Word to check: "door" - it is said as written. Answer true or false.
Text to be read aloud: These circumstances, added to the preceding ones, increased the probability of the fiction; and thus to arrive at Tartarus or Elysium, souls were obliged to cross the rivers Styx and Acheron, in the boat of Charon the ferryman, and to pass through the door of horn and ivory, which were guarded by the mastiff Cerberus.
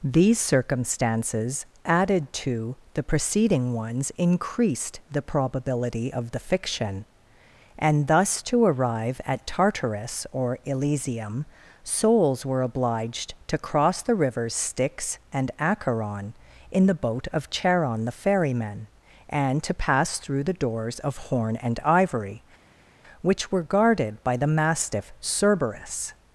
false